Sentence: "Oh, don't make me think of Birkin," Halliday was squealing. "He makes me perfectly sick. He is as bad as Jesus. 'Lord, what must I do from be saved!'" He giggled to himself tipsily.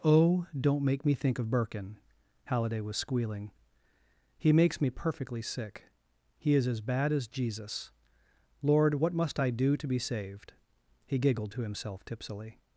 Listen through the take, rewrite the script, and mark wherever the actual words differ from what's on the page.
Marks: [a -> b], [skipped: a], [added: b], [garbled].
"Oh, don't make me think of Birkin," Halliday was squealing. "He makes me perfectly sick. He is as bad as Jesus. 'Lord, what must I do [from -> to] be saved!'" He giggled to himself tipsily.